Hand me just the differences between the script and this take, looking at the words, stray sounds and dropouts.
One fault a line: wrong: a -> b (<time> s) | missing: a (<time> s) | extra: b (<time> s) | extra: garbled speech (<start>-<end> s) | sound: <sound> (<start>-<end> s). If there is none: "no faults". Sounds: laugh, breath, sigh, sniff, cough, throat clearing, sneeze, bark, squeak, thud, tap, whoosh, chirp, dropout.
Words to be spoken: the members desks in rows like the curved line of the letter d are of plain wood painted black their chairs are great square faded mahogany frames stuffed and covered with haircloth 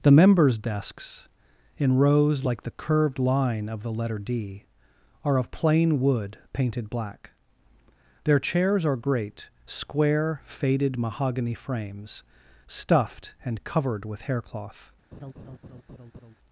sound: laugh (15.1-16.4 s)